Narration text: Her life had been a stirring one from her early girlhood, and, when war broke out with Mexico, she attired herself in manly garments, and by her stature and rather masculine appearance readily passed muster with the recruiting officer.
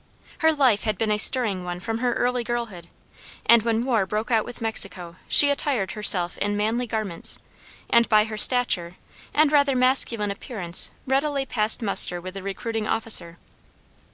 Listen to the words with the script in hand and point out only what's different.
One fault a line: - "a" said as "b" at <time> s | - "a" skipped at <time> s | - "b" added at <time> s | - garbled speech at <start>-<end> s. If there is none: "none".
none